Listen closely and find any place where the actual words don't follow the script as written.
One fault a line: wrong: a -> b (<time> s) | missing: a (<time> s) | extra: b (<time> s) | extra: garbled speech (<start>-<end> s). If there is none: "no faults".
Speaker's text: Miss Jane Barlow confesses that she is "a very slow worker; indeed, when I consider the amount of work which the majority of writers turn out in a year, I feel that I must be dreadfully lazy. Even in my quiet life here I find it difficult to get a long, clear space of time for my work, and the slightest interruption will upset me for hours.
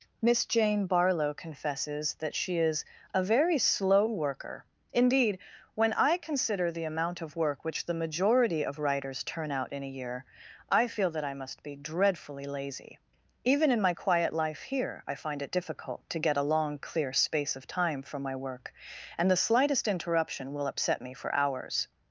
no faults